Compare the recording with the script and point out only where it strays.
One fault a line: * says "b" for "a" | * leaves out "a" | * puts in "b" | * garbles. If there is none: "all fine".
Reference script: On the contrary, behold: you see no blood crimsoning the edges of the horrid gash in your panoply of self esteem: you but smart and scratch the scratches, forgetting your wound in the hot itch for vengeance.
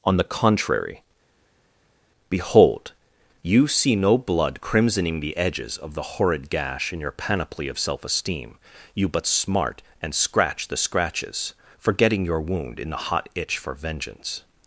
all fine